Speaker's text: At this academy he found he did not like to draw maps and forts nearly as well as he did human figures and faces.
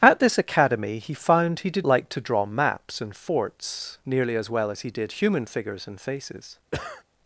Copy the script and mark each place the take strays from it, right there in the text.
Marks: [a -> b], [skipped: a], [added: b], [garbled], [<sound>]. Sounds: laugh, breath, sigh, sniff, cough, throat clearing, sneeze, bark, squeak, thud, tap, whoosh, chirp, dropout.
At this academy he found he did [skipped: not] like to draw maps and forts nearly as well as he did human figures and faces. [cough]